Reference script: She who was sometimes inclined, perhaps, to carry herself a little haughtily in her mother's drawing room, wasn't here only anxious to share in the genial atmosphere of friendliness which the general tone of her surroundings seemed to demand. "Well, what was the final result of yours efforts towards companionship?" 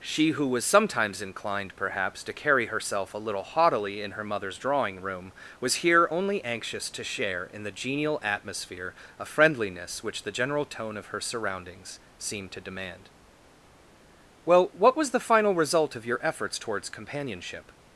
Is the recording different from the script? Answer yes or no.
yes